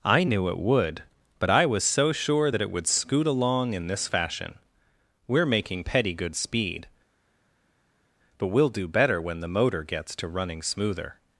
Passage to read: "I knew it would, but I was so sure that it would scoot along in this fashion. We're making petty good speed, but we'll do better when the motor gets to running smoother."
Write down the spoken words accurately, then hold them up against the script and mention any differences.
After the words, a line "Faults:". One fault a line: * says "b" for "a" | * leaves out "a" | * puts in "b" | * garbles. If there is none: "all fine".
"I knew it would, but I was so sure that it would scoot along in this fashion. We're making petty good speed, but we'll do better when the motor gets to running smoother."
Faults:
all fine